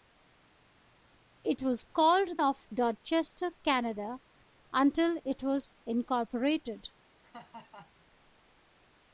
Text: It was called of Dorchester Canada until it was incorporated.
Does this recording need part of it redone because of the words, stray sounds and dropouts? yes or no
yes